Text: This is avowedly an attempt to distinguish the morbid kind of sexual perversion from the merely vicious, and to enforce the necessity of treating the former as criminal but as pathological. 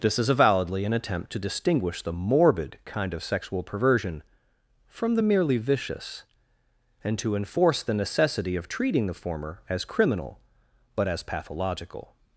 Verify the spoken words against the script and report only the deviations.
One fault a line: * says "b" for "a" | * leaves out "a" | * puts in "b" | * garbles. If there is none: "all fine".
all fine